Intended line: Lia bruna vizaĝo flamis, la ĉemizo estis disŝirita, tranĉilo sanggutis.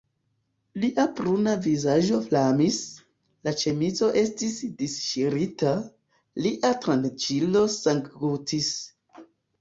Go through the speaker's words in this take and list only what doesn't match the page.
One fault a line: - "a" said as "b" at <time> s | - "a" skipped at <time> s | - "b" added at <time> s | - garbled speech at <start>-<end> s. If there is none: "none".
- "lia" added at 6.4 s